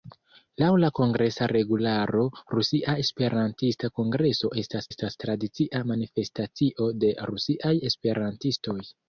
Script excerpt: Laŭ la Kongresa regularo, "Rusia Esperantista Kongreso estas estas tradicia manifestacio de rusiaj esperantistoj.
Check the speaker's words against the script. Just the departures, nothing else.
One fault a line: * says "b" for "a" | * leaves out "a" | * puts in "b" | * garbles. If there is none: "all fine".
all fine